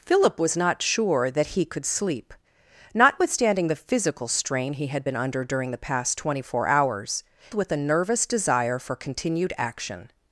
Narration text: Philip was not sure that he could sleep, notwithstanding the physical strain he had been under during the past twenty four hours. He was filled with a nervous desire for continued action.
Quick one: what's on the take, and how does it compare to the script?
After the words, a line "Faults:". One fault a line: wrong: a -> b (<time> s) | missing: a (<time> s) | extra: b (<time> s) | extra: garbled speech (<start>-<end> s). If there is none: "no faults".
Philip was not sure that he could sleep, notwithstanding the physical strain he had been under during the past twenty four hours. With a nervous desire for continued action.
Faults:
missing: He was filled (7.2 s)